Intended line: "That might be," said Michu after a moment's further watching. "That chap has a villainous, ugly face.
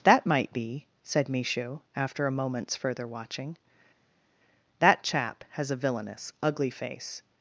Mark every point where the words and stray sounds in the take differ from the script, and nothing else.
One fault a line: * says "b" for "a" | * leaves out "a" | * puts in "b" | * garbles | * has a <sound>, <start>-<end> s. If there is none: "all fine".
all fine